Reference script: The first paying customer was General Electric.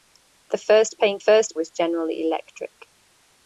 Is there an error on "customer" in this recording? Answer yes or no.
yes